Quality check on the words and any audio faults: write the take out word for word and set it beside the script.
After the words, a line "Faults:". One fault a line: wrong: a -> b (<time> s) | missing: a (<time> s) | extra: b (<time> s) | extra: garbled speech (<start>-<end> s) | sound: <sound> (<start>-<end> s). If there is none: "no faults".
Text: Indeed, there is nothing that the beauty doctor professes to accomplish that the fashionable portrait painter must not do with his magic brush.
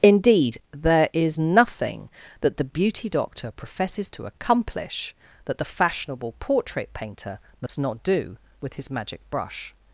Indeed, there is nothing that the beauty doctor professes to accomplish that the fashionable portrait painter must not do with his magic brush.
Faults:
sound: dropout (7.7-7.7 s)